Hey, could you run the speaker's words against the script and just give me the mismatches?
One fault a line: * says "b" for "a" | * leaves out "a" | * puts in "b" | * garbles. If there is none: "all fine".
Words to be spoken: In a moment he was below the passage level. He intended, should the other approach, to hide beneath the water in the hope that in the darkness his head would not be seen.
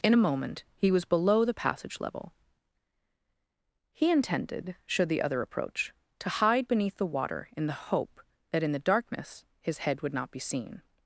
all fine